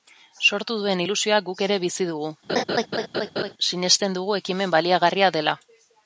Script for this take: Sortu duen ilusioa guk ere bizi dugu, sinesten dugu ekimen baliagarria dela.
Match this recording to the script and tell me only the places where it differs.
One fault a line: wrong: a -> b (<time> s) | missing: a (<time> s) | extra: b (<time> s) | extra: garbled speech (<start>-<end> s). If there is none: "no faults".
no faults